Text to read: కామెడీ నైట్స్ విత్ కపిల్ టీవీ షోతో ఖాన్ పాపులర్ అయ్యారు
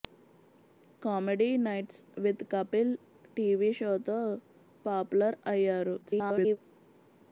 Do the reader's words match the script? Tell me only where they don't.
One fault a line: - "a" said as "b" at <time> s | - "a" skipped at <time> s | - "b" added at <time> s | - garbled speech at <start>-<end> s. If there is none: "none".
- "ఖాన్" skipped at 4.2 s
- garbled speech at 6.0-6.6 s